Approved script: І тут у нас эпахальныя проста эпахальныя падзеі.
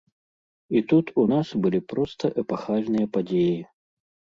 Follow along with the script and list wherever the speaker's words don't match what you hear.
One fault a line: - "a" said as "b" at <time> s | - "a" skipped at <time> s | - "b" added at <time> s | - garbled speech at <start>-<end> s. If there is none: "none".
- "эпахальныя" said as "былі" at 1.6 s